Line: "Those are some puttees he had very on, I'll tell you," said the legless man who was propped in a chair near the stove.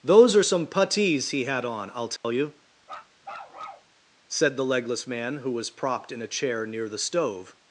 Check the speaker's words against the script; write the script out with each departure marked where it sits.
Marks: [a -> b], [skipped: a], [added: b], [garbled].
"Those are some puttees he had [skipped: very] on, I'll tell you," said the legless man who was propped in a chair near the stove.